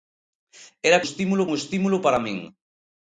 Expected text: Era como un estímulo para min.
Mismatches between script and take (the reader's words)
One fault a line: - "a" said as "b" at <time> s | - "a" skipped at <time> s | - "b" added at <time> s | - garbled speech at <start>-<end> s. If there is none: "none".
- "como" said as "estímulo" at 1.0 s